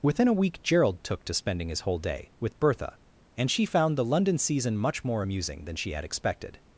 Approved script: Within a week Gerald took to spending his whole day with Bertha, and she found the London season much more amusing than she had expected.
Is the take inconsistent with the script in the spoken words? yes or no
no